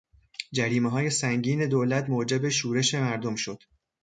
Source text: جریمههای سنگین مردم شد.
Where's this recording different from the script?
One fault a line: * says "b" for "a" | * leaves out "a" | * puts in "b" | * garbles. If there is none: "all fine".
* puts in "دولت موجب شورش"